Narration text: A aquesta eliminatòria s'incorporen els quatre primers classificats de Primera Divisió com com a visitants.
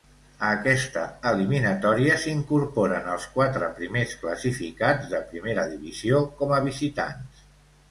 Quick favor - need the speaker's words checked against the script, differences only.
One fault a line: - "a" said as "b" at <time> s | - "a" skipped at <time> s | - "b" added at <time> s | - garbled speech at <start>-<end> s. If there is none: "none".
- "com" skipped at 6.6 s